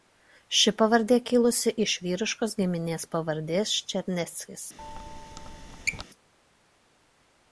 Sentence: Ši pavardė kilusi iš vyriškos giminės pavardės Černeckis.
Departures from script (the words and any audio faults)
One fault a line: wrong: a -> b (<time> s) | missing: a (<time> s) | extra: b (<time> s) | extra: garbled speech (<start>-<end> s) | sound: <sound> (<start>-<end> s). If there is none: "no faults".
sound: squeak (4.8-6.0 s)